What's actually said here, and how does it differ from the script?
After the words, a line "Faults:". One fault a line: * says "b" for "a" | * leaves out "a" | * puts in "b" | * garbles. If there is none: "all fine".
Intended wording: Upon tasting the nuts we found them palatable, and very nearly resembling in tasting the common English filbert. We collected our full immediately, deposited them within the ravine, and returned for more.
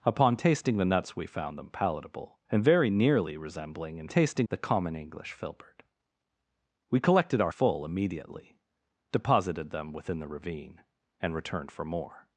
Upon tasting the nuts we found them palatable, and very nearly resembling in tasting the common English filbert. We collected our full immediately, deposited them within the ravine, and returned for more.
Faults:
all fine